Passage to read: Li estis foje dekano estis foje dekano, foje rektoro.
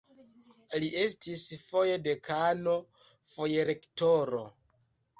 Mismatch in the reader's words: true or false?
true